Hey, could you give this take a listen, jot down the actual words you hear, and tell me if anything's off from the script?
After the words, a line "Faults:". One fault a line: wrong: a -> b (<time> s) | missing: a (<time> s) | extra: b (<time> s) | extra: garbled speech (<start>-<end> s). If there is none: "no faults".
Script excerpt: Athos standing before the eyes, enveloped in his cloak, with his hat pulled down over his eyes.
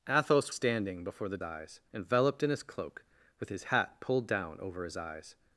Athos standing before the eyes, enveloped in his cloak, with his hat pulled down over his eyes.
Faults:
no faults